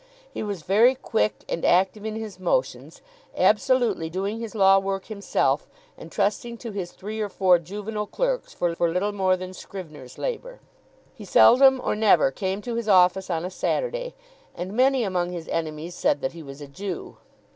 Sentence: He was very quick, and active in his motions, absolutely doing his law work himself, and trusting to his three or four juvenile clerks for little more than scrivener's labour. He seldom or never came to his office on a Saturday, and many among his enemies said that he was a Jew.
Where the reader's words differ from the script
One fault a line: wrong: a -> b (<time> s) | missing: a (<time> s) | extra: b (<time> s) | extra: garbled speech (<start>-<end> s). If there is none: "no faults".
extra: for (8.7 s)